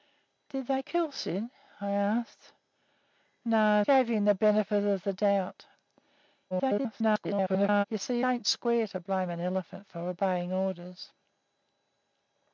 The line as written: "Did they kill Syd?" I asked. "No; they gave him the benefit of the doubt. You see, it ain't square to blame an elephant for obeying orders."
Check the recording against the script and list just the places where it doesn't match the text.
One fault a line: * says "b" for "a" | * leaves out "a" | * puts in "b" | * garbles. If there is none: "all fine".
* leaves out "they"
* garbles
* leaves out "it"